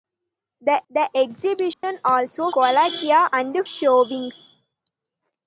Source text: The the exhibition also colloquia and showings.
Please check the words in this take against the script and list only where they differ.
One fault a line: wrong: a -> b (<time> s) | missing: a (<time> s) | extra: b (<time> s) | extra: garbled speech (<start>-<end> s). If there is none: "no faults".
no faults